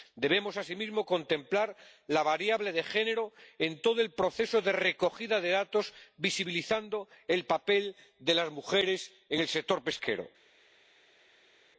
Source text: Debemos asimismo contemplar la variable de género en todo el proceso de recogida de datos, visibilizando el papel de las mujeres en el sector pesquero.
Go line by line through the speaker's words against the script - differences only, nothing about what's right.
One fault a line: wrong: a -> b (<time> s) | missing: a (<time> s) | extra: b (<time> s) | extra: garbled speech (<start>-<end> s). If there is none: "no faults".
no faults